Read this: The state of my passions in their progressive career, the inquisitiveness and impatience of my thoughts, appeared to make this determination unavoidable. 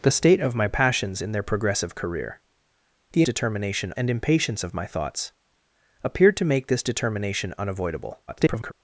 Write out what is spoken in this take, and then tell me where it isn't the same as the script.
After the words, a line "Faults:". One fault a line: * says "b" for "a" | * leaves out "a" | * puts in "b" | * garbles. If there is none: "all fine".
The state of my passions in their progressive career, the determination and impatience of my thoughts, appeared to make this determination unavoidable. [garbled]
Faults:
* says "determination" for "inquisitiveness"
* garbles